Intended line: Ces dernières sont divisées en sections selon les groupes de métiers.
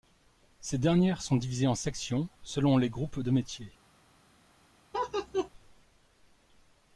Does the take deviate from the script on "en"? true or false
false